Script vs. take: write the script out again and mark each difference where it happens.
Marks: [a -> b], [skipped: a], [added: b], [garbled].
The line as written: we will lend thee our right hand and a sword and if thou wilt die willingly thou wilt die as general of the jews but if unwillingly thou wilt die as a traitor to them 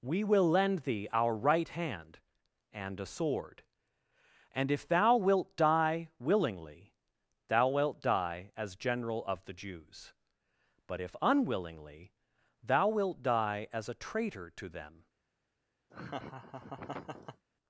we will lend thee our right hand and a sword and if thou wilt die willingly thou wilt die as general of the jews but if unwillingly thou wilt die as a traitor to them